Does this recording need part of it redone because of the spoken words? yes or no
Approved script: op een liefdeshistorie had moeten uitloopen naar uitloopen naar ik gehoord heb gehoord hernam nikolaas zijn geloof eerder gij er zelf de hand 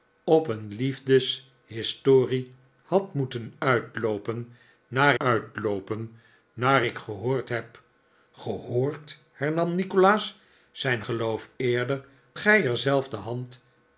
no